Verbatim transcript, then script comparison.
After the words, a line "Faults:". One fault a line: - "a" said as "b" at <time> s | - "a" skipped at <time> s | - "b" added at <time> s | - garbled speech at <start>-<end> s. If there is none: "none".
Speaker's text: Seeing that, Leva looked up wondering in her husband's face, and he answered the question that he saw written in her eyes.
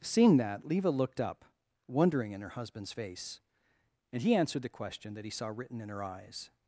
Seeing that, Leva looked up wondering in her husband's face, and he answered the question that he saw written in her eyes.
Faults:
none